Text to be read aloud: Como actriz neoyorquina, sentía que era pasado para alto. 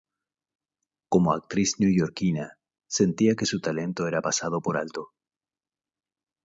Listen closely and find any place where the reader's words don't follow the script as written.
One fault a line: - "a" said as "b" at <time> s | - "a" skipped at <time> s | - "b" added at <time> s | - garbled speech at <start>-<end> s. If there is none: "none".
- "su talento" added at 3.4 s
- "para" said as "por" at 4.6 s